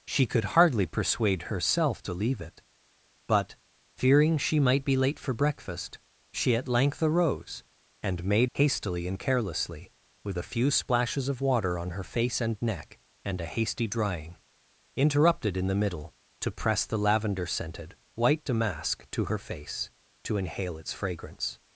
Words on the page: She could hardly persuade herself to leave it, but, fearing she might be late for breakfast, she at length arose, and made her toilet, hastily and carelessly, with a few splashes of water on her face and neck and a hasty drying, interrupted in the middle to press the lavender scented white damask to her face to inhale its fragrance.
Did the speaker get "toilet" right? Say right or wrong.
wrong